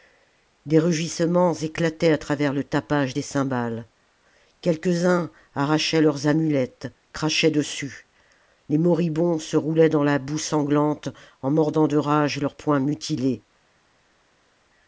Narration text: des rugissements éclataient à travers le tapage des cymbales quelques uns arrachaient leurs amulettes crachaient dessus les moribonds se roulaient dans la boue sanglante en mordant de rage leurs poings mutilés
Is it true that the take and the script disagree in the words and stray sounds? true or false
false